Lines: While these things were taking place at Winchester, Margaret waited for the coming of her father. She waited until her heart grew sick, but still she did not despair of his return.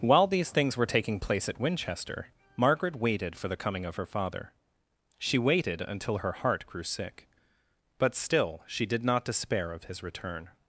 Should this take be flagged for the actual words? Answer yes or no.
no